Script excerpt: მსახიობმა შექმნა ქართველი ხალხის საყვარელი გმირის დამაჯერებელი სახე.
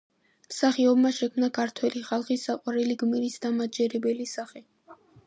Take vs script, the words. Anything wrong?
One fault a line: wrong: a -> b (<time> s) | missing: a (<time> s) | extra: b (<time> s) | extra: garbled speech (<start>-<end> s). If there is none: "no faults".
no faults